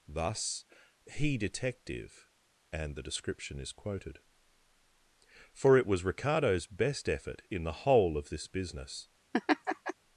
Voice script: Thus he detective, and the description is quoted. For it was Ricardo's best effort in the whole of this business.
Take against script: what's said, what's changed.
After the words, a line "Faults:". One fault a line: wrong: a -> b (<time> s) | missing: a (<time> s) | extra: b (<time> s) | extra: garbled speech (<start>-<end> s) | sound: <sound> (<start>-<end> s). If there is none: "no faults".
Thus he detective, and the description is quoted. For it was Ricardo's best effort in the whole of this business.
Faults:
sound: laugh (9.3-9.9 s)